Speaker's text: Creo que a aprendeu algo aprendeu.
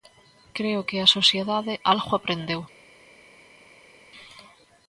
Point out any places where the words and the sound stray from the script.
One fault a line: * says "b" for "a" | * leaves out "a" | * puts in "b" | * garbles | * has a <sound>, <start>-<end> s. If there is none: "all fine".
* says "sociedade" for "aprendeu"